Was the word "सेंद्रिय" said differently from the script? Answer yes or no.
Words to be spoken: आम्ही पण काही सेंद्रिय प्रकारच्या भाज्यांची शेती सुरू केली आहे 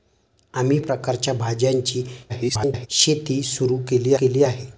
yes